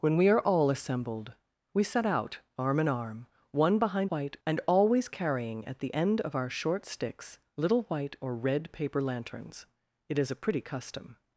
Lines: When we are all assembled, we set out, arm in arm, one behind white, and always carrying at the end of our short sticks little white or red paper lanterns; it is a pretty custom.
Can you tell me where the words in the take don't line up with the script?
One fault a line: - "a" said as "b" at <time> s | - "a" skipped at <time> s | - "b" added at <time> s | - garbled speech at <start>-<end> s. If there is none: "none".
none